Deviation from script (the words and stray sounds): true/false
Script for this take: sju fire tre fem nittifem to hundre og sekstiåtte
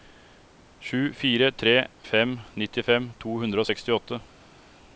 false